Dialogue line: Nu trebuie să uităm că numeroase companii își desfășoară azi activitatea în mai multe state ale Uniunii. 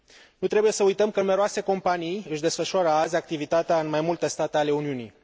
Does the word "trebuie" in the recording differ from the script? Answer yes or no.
no